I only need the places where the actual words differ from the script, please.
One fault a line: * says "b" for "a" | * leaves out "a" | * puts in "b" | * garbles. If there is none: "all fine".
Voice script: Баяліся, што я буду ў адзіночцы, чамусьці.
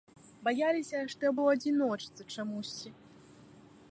* leaves out "буду"